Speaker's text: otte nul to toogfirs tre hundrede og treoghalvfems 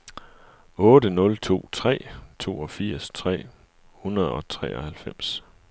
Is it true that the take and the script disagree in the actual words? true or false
true